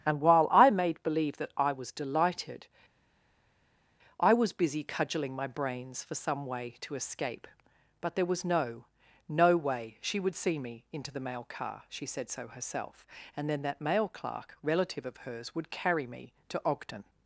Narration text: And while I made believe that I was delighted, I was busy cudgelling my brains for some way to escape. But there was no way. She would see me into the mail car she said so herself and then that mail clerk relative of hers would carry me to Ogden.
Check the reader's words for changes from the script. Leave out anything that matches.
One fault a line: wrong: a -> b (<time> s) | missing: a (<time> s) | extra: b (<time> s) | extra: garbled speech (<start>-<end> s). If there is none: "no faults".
extra: no (9.3 s)